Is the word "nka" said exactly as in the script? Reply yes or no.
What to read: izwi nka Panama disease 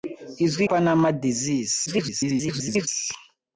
no